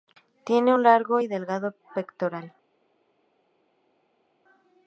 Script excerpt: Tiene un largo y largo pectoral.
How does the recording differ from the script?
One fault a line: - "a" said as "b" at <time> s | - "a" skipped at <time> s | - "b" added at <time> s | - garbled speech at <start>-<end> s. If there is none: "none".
- "largo" said as "delgado" at 1.3 s